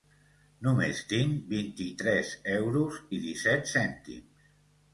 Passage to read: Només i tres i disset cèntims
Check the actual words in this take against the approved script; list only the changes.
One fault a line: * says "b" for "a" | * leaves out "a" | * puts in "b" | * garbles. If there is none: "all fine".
* puts in "tinc vint"
* puts in "euros"